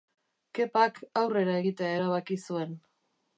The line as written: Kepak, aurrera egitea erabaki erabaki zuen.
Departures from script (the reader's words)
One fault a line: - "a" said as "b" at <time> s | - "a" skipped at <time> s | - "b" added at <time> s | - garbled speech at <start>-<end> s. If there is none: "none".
- "erabaki" skipped at 2.4 s